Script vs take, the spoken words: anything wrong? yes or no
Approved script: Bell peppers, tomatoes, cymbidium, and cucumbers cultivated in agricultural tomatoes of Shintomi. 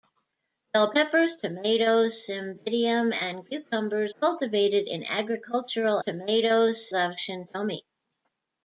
no